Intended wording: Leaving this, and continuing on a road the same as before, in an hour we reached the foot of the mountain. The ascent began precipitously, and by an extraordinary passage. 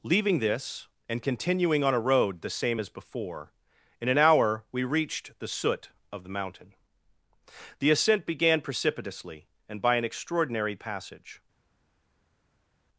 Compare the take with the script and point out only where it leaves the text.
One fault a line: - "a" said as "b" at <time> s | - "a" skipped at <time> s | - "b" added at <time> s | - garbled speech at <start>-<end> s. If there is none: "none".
- "foot" said as "soot" at 5.5 s